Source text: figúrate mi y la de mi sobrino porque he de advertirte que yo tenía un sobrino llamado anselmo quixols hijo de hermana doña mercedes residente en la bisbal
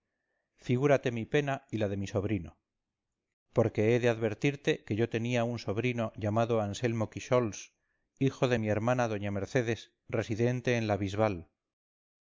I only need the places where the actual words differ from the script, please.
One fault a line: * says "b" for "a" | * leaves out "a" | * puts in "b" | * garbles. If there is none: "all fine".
* puts in "pena"
* puts in "mi"